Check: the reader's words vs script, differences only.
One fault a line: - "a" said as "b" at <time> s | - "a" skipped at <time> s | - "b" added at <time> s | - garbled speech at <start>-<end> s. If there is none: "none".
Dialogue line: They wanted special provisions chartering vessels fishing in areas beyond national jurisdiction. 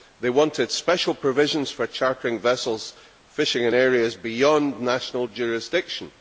- "for" added at 1.7 s